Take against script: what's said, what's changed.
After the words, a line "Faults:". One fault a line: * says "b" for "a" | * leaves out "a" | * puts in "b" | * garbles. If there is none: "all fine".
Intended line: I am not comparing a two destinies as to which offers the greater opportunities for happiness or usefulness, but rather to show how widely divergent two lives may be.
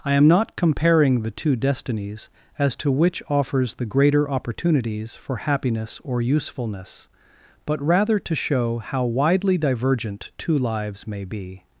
I am not comparing the two destinies as to which offers the greater opportunities for happiness or usefulness, but rather to show how widely divergent two lives may be.
Faults:
* says "the" for "a"